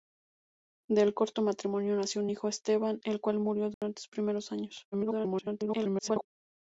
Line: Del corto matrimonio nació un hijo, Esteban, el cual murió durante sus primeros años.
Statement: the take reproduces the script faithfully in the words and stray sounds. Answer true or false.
false